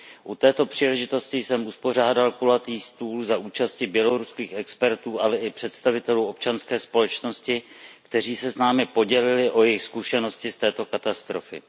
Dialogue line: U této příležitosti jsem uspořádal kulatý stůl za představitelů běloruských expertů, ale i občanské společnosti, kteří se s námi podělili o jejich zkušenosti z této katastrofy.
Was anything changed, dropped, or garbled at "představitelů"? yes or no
yes